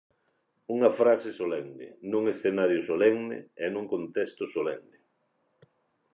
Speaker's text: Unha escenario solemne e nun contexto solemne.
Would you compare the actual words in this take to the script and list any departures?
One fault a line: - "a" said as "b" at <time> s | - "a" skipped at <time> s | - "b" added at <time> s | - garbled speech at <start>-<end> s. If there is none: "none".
- "frase solemne nun" added at 1.0 s